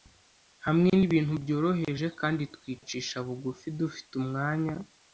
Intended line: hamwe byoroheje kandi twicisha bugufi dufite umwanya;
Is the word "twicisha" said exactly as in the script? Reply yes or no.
yes